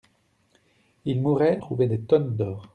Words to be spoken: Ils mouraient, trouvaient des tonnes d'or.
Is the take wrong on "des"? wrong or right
right